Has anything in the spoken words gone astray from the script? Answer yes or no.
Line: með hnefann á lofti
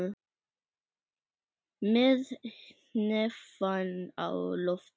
no